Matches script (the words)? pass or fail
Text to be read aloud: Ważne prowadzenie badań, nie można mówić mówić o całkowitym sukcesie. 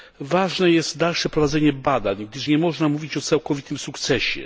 fail